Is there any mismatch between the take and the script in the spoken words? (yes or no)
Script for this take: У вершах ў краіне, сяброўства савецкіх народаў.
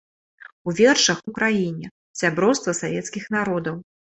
no